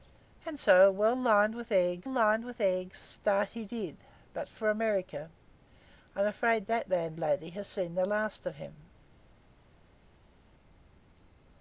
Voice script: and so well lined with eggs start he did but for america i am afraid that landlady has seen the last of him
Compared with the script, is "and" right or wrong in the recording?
right